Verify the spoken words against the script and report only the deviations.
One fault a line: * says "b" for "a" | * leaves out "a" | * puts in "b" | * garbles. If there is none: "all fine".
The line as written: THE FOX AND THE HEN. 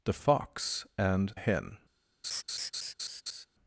* leaves out "THE"